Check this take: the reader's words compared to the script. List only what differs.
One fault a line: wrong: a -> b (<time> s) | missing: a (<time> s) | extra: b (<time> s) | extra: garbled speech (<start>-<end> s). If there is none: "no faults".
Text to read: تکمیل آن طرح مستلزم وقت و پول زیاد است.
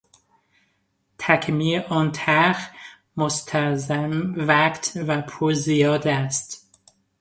no faults